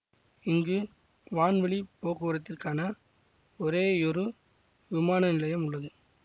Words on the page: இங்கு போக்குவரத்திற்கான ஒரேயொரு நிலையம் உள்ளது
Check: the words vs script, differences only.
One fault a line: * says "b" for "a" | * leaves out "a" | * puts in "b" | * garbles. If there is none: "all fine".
* puts in "வான்வழி"
* puts in "விமான"